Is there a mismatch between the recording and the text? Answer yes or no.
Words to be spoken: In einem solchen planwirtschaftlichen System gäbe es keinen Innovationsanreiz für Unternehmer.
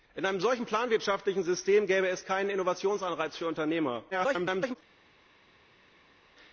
yes